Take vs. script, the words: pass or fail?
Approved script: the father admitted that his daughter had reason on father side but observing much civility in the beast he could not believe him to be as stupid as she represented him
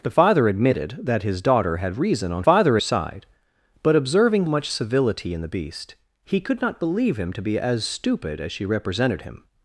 pass